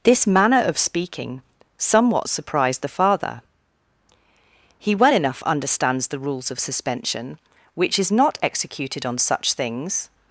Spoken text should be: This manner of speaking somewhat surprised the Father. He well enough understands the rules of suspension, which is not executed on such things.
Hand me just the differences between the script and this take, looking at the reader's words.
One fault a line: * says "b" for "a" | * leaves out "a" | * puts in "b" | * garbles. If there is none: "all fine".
all fine